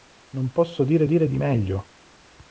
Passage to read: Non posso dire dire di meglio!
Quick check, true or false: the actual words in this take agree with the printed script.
true